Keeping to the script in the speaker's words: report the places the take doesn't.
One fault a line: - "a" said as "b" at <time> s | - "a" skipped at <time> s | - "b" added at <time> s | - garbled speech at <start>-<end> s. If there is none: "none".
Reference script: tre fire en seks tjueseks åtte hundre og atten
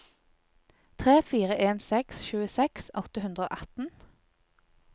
none